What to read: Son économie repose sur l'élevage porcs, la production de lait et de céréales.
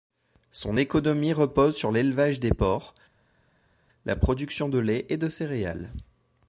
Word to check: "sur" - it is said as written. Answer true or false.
true